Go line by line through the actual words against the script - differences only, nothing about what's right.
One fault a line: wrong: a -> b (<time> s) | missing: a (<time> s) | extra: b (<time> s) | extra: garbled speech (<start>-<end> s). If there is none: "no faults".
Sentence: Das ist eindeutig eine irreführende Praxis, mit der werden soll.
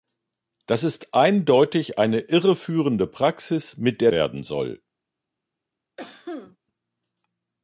no faults